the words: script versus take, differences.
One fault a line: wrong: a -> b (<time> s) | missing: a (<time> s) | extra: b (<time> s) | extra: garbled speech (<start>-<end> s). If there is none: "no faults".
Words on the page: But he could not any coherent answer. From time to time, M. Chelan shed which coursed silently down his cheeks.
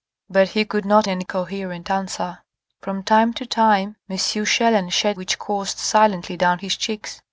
no faults